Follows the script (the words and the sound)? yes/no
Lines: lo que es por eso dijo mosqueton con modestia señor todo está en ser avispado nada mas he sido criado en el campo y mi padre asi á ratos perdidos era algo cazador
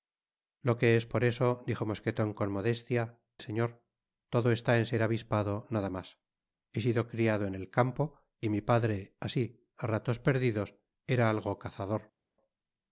yes